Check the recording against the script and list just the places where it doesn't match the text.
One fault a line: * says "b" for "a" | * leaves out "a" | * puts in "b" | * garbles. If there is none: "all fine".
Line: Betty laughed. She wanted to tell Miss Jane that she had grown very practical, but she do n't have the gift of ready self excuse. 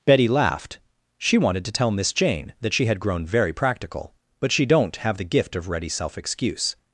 all fine